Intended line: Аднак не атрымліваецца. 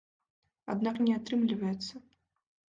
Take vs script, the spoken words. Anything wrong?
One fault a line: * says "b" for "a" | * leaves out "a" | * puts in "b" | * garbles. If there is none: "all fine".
all fine